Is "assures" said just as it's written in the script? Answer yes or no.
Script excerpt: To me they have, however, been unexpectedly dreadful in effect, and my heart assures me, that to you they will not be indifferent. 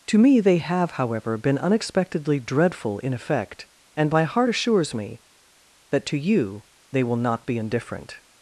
yes